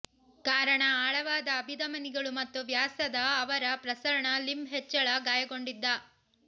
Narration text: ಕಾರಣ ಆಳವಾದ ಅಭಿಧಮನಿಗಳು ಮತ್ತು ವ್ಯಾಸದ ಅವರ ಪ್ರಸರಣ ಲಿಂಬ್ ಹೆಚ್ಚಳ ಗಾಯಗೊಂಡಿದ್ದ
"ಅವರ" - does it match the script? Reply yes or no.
yes